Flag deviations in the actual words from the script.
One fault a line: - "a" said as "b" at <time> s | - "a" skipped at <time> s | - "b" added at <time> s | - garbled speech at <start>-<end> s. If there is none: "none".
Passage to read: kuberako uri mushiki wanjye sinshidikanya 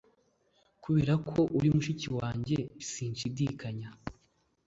none